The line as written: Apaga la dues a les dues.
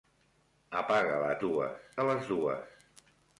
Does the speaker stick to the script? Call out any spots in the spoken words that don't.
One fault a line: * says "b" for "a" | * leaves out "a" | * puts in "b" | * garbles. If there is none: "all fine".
all fine